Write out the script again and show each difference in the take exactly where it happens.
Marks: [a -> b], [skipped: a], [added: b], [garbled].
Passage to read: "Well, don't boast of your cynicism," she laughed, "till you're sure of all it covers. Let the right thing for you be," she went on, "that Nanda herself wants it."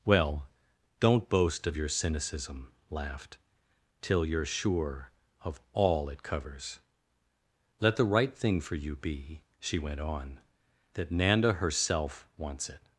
"Well, don't boast of your cynicism," [skipped: she] laughed, "till you're sure of all it covers. Let the right thing for you be," she went on, "that Nanda herself wants it."